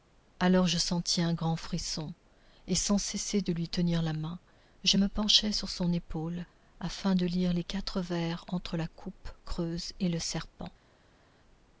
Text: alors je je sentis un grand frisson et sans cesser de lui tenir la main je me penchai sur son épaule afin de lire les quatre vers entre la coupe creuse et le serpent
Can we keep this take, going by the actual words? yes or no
no